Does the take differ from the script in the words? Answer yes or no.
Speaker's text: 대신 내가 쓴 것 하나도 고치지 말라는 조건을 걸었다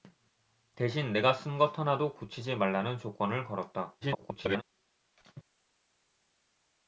yes